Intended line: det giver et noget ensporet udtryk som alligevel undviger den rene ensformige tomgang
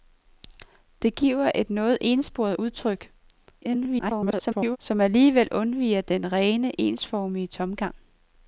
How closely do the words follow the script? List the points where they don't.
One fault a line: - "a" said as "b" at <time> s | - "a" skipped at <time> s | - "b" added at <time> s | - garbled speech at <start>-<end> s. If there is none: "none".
- garbled speech at 3.6-4.8 s